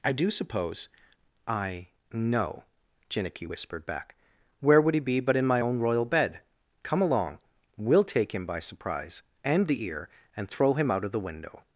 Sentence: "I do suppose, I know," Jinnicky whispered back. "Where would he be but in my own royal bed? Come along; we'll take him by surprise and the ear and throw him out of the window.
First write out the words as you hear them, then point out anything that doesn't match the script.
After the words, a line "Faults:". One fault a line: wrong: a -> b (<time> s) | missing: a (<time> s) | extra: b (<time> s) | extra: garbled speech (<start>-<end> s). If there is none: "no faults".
"I do suppose, I know," Jinnicky whispered back. "Where would he be but in my own royal bed? Come along; we'll take him by surprise and the ear and throw him out of the window.
Faults:
no faults